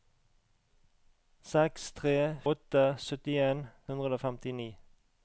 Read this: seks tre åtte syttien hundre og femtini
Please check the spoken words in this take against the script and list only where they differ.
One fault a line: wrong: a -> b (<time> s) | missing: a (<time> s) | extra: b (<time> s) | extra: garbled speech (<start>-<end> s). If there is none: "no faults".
no faults